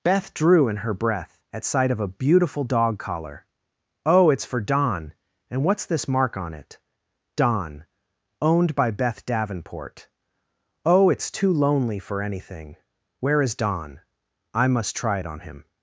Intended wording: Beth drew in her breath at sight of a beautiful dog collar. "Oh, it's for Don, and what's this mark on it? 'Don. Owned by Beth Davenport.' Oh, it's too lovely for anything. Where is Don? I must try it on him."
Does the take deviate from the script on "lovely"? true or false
true